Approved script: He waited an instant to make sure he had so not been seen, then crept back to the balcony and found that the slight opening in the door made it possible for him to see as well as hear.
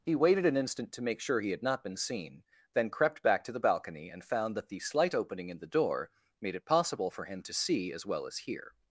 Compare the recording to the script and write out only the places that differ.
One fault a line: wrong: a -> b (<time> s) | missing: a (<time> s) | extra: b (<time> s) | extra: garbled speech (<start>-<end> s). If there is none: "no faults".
missing: so (1.6 s)